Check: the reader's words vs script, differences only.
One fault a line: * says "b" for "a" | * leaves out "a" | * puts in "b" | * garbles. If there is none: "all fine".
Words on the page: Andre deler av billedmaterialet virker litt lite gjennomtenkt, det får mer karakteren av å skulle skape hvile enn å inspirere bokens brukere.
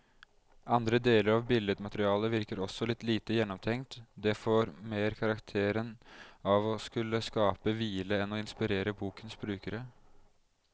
* puts in "også"